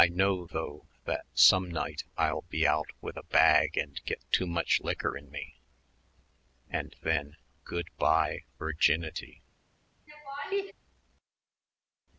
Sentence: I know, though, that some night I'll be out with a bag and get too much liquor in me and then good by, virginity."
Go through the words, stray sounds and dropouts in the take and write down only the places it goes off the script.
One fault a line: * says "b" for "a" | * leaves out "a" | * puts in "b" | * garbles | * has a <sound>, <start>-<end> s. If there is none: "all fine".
* has a laugh, 10.1-10.7 s